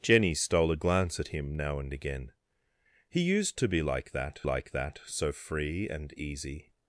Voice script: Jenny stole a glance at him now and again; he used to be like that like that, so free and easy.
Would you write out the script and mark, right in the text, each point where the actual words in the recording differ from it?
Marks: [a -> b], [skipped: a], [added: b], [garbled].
Jenny stole a glance at him now and again; he used to be like that like that, so free and easy.